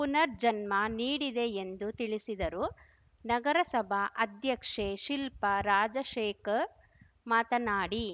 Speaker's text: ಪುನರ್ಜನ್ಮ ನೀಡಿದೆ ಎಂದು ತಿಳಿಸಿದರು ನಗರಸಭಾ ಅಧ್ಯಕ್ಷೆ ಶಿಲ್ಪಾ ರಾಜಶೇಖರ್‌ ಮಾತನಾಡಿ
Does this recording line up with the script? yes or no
yes